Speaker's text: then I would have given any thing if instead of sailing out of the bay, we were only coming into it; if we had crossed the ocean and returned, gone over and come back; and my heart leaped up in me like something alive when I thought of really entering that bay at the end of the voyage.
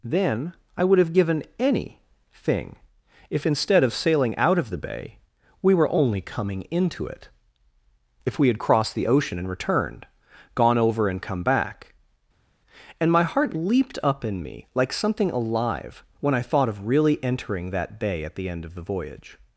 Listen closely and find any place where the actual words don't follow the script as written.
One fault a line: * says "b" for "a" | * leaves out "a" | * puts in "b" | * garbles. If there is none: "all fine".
all fine